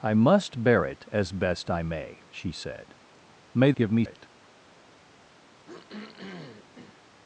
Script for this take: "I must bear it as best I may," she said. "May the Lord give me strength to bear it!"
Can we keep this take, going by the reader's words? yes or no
no